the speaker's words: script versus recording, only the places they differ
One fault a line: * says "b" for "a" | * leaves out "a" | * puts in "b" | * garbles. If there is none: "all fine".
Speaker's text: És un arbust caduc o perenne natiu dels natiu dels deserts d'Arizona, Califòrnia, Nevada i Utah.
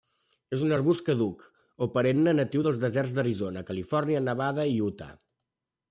* leaves out "natiu dels"